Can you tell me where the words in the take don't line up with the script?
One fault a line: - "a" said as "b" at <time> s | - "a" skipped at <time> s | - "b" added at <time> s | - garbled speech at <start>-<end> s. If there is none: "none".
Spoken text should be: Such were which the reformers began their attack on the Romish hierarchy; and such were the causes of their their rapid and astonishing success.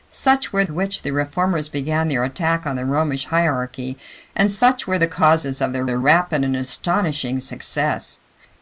none